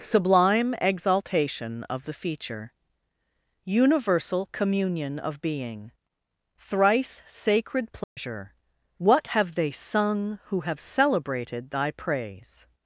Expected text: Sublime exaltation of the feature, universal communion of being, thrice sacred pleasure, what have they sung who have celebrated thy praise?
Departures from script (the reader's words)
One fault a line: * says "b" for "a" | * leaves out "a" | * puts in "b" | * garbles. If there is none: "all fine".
all fine